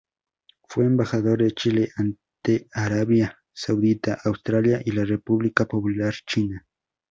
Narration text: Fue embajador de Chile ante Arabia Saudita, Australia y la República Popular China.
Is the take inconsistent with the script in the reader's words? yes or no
no